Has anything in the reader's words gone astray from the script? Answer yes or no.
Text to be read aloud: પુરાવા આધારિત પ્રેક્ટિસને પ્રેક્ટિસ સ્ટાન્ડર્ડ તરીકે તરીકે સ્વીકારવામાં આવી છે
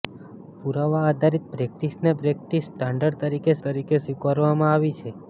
no